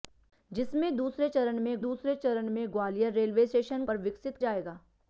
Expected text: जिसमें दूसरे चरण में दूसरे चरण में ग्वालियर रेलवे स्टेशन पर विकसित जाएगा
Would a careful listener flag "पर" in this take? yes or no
no